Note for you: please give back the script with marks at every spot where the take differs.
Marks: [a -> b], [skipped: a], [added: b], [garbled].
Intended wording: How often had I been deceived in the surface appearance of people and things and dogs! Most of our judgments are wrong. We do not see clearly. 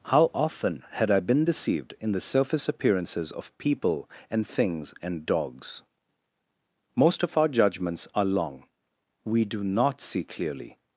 How often had I been deceived in the surface [appearance -> appearances] of people and things and dogs! Most of our judgments are [wrong. -> long] We do not see clearly.